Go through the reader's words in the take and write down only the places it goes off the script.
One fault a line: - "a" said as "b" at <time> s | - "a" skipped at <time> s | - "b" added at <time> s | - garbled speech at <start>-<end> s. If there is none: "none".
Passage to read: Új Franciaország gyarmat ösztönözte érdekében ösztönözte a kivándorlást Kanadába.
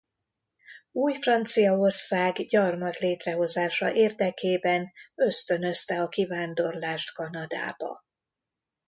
- "ösztönözte" said as "létrehozása" at 3.0 s